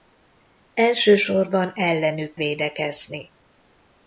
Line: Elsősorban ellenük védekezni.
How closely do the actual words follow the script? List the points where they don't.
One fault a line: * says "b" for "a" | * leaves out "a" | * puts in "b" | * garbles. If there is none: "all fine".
all fine